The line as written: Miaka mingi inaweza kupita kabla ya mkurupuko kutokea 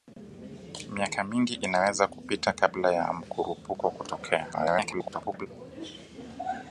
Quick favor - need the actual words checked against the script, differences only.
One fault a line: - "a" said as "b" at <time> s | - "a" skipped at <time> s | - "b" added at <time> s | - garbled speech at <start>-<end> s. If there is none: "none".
- garbled speech at 4.5-5.5 s